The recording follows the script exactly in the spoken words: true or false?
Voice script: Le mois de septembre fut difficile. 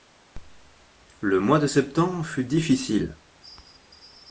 true